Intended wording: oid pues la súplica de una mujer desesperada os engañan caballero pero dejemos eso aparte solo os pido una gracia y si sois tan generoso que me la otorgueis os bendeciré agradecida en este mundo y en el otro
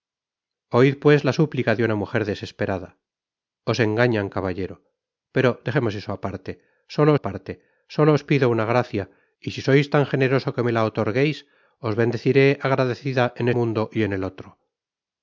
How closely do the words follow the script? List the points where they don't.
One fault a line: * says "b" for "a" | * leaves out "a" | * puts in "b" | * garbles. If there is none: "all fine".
* puts in "aparte solo"
* leaves out "este"